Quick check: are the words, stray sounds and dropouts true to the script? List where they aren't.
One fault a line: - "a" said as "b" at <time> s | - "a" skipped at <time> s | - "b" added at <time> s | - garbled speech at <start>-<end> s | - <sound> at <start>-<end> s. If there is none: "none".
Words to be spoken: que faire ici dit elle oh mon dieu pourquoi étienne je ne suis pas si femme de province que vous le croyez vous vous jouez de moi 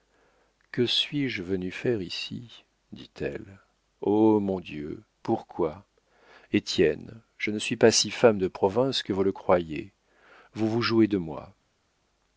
- "suis je venue" added at 0.9 s